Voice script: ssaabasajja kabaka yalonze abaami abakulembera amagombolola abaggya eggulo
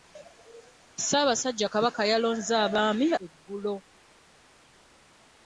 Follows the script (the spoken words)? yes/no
no